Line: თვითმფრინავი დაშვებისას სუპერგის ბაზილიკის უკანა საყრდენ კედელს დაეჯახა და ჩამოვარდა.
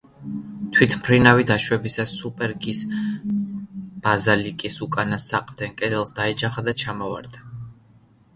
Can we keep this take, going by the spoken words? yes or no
yes